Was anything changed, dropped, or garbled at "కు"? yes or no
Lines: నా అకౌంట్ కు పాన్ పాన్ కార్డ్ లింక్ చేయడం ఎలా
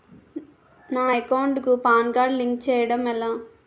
no